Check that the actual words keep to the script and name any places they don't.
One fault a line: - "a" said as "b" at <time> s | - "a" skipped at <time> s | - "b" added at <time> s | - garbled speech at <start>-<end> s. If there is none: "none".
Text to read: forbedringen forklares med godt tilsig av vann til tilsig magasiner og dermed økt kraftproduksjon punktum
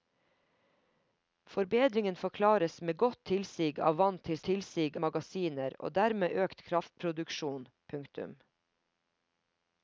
none